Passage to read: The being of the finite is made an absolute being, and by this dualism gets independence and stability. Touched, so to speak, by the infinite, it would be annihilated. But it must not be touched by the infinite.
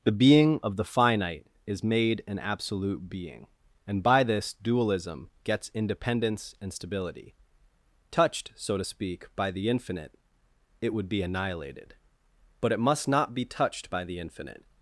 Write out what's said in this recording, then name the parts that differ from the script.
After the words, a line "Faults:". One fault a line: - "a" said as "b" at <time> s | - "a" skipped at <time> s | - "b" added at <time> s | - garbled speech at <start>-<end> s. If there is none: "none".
The being of the finite is made an absolute being, and by this dualism gets independence and stability. Touched, so to speak, by the infinite, it would be annihilated. But it must not be touched by the infinite.
Faults:
none